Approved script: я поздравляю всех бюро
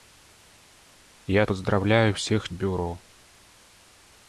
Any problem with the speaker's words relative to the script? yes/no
no